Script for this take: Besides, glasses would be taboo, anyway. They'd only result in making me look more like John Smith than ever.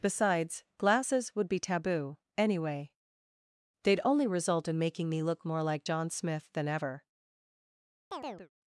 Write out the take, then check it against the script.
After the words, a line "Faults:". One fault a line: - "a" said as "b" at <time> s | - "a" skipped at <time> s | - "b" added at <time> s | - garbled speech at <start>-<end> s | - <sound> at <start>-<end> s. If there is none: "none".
Besides, glasses would be taboo, anyway. They'd only result in making me look more like John Smith than ever.
Faults:
- chirp at 8.1-8.5 s